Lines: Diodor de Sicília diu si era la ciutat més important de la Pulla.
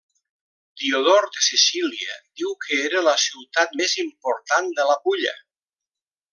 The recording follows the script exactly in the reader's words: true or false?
false